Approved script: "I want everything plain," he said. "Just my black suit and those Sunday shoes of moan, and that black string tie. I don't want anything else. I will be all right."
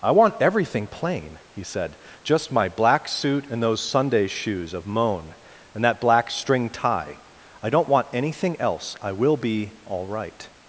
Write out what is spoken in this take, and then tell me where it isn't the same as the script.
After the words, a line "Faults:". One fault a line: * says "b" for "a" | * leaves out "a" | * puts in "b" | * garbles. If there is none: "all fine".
"I want everything plain," he said. "Just my black suit and those Sunday shoes of moan, and that black string tie. I don't want anything else. I will be all right."
Faults:
all fine